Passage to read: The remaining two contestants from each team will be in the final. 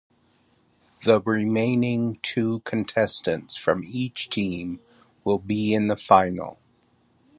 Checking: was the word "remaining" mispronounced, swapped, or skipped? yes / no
no